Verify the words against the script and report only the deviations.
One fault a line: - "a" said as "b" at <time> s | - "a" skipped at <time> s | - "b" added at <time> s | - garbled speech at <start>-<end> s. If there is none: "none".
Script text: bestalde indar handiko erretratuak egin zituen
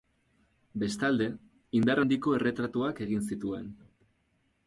none